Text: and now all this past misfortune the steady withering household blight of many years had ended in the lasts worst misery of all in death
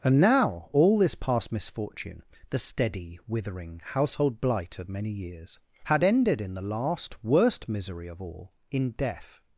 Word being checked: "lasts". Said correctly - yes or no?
no